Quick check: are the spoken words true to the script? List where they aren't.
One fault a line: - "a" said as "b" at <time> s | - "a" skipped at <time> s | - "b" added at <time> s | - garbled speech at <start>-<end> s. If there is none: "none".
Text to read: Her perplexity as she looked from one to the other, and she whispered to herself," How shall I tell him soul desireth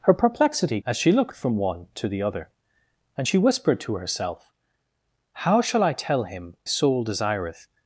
none